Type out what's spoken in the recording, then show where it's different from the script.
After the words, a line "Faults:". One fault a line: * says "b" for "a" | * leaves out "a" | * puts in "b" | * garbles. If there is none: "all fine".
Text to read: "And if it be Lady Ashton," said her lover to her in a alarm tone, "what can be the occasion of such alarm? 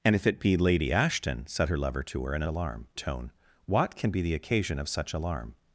"And if it be Lady Ashton," said her lover to her in a alarm tone, "what can be the occasion of such alarm?
Faults:
all fine